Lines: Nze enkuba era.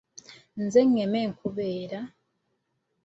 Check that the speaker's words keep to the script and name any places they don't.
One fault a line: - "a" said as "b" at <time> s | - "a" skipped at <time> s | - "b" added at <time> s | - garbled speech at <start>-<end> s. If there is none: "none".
- "ngema" added at 0.9 s